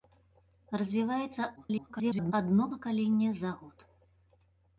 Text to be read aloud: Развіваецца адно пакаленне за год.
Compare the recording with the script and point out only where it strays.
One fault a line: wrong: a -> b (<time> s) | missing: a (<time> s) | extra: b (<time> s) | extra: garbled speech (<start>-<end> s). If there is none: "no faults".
extra: garbled speech (1.6-2.3 s)